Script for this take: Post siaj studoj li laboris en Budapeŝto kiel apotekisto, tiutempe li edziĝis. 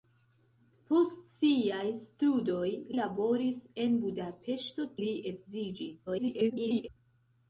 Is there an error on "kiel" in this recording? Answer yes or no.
yes